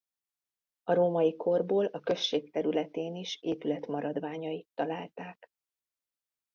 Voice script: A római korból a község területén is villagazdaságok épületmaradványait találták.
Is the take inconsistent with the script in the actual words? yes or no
yes